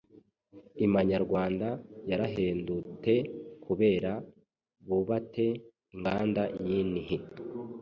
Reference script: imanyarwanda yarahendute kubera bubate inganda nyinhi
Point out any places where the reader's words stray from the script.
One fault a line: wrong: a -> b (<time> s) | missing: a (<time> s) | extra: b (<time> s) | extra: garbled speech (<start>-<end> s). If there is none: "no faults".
no faults